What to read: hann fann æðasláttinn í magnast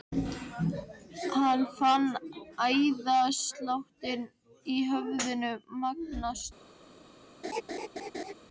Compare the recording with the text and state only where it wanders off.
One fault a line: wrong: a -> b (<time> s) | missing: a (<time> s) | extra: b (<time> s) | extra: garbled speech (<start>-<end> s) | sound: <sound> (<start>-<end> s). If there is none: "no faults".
extra: höfðinu (4.9 s)
sound: laugh (7.4-8.3 s)